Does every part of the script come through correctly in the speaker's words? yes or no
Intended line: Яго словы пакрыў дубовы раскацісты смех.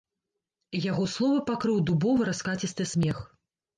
yes